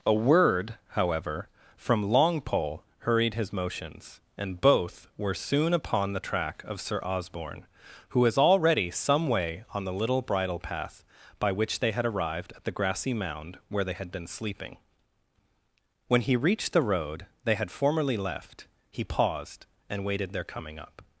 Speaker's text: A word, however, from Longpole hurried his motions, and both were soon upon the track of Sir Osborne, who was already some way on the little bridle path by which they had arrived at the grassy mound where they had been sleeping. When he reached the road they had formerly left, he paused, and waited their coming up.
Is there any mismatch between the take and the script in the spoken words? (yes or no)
no